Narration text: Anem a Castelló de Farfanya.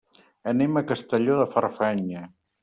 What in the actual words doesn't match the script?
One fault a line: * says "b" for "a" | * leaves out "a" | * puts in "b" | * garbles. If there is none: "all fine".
all fine